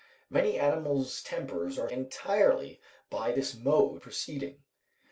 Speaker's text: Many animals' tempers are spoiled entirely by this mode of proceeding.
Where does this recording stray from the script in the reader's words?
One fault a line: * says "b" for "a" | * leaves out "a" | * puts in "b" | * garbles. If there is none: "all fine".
* leaves out "spoiled"
* leaves out "of"